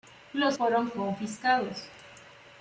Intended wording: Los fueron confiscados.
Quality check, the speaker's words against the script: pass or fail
pass